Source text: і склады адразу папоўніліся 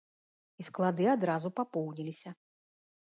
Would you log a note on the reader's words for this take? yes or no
no